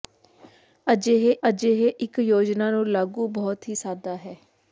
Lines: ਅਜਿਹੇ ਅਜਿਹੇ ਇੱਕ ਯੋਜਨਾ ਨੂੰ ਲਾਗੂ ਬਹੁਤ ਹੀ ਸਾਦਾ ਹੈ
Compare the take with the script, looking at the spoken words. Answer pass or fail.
pass